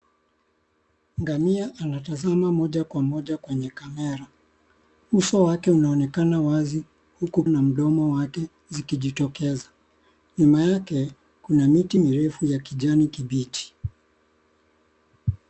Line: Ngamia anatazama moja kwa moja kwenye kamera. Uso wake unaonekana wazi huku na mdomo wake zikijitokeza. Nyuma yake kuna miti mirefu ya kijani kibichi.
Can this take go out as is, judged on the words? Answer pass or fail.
pass